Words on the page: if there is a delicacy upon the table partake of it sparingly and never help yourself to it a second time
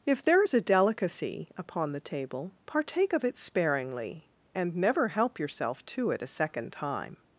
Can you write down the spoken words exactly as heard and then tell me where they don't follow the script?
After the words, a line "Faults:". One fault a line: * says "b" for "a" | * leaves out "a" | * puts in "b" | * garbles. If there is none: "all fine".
if there is a delicacy upon the table partake of it sparingly and never help yourself to it a second time
Faults:
all fine